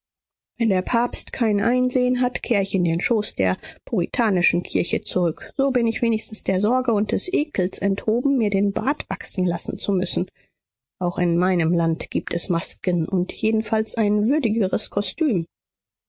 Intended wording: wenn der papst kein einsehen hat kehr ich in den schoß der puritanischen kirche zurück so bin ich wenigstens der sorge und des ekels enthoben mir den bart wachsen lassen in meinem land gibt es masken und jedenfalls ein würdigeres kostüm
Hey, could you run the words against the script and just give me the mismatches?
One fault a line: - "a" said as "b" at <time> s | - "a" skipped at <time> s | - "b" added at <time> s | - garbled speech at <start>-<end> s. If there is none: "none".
- "zu müssen auch" added at 9.8 s